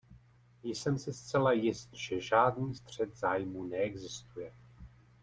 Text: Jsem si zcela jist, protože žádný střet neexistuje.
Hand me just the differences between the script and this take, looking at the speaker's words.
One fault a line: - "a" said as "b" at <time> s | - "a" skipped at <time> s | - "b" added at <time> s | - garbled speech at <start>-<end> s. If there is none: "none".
- "protože" said as "že" at 1.9 s
- "zájmů" added at 3.2 s